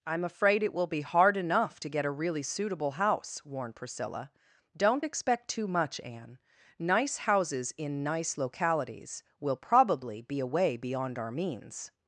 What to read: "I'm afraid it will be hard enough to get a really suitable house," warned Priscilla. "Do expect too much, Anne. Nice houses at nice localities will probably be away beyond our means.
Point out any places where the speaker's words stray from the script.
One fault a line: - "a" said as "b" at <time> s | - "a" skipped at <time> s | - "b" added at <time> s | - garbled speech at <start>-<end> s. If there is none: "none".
- "Do" said as "Don't" at 4.8 s
- "at" said as "in" at 7.8 s